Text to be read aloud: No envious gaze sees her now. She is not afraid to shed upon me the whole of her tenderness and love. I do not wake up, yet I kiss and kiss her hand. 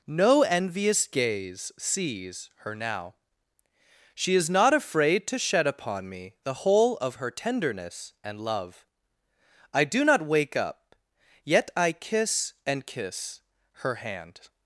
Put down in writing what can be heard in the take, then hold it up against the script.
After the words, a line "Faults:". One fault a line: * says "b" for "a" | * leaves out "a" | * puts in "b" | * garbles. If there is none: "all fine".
No envious gaze sees her now. She is not afraid to shed upon me the whole of her tenderness and love. I do not wake up, yet I kiss and kiss her hand.
Faults:
all fine